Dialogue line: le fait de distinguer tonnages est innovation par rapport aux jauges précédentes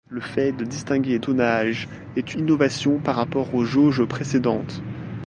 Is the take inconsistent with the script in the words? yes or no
no